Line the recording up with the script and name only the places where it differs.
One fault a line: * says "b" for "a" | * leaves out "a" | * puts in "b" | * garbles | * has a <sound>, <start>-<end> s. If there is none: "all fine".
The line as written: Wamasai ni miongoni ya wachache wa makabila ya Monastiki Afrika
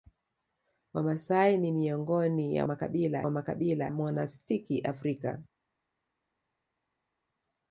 * says "makabila" for "wachache"
* leaves out "ya"